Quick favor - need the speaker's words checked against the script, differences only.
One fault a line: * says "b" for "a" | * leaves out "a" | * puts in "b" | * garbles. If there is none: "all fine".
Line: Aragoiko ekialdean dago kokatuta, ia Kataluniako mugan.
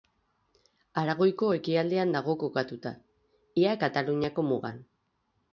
all fine